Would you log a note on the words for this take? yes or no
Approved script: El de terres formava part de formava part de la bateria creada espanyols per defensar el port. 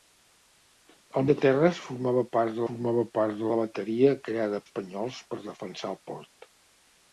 no